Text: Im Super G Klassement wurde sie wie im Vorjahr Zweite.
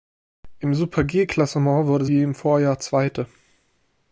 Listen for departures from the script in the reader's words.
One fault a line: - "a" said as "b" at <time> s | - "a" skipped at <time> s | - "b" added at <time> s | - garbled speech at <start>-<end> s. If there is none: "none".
- "sie" skipped at 2.0 s